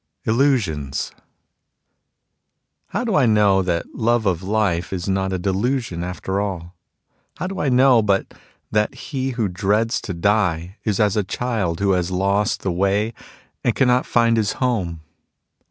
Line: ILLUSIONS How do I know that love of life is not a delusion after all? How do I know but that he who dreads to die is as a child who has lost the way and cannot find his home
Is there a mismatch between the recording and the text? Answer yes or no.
no